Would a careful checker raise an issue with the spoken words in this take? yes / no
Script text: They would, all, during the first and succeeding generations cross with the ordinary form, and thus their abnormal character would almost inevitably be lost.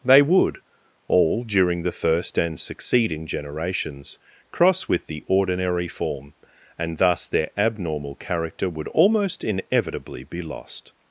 no